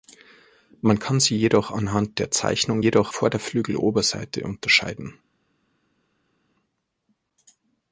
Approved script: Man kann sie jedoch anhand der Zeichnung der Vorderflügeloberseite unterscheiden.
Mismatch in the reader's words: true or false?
true